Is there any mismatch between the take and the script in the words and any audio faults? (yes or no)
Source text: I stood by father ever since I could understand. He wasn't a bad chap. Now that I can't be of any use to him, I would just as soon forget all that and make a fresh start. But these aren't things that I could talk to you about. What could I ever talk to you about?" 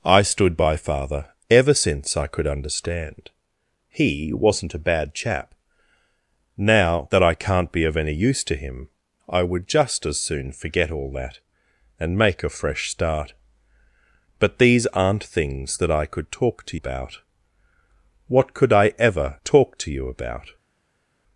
yes